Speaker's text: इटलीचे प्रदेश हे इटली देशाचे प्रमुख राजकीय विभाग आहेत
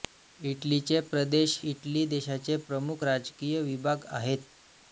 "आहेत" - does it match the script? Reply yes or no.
yes